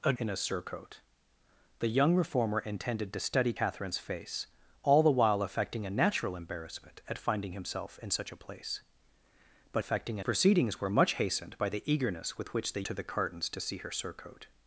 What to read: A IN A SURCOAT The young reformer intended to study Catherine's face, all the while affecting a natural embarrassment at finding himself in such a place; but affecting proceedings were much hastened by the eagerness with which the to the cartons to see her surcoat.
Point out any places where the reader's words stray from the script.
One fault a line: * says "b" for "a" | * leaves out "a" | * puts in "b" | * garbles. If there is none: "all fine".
all fine